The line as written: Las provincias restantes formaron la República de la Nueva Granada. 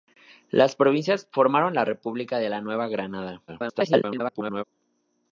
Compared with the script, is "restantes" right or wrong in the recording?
wrong